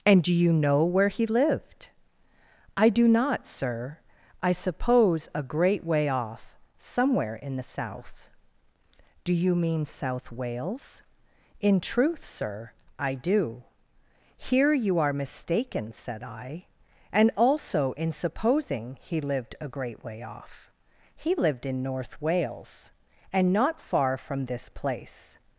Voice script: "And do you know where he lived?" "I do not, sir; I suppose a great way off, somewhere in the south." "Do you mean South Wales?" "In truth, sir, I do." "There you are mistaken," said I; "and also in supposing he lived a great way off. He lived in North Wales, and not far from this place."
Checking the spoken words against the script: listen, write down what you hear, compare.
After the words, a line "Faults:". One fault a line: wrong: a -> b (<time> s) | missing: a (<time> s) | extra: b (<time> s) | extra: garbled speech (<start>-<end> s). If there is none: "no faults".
"And do you know where he lived?" "I do not, sir; I suppose a great way off, somewhere in the south." "Do you mean South Wales?" "In truth, sir, I do." "Here you are mistaken," said I; "and also in supposing he lived a great way off. He lived in North Wales, and not far from this place."
Faults:
wrong: There -> Here (14.4 s)